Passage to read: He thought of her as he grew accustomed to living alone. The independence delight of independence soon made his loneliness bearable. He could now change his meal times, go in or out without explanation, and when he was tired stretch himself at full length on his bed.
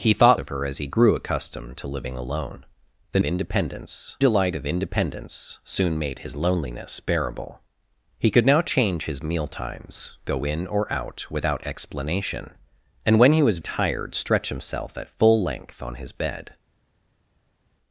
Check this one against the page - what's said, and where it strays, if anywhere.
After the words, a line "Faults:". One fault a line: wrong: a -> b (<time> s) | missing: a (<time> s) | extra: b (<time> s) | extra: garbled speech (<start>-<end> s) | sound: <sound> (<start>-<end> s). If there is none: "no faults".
He thought of her as he grew accustomed to living alone. The independence delight of independence soon made his loneliness bearable. He could now change his meal times, go in or out without explanation, and when he was tired stretch himself at full length on his bed.
Faults:
no faults